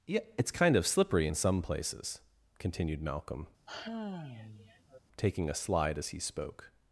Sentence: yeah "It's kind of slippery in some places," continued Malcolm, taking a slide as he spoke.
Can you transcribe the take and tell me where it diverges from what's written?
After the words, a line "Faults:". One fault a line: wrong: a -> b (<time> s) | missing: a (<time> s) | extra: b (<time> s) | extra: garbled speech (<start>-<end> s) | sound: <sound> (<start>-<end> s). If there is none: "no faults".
yeah "It's kind of slippery in some places," continued Malcolm, taking a slide as he spoke.
Faults:
sound: sigh (3.7-5.0 s)